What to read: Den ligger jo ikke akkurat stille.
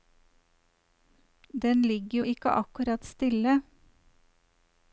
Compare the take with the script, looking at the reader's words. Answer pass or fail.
pass